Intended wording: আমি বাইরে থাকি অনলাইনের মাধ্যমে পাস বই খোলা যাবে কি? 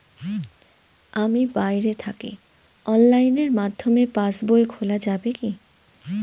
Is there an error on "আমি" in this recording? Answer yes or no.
no